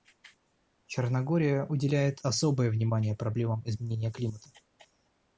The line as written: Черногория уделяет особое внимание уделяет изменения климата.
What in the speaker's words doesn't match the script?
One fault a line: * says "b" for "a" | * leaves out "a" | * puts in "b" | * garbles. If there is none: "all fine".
* says "проблемам" for "уделяет"